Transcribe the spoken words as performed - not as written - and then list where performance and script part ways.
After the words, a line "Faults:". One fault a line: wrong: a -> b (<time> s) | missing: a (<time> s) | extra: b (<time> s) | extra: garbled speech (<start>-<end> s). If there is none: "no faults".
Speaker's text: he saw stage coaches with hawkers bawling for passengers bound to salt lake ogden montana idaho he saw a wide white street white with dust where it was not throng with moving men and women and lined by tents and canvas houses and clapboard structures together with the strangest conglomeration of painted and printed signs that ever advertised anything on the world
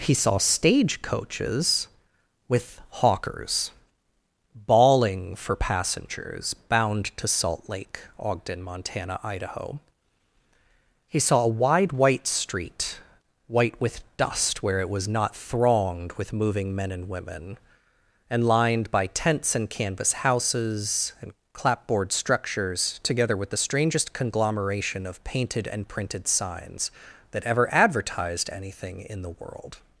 he saw stage coaches with hawkers bawling for passengers bound to salt lake ogden montana idaho he saw a wide white street white with dust where it was not thronged with moving men and women and lined by tents and canvas houses and clapboard structures together with the strangest conglomeration of painted and printed signs that ever advertised anything in the world
Faults:
wrong: throng -> thronged (15.3 s)
wrong: on -> in (29.0 s)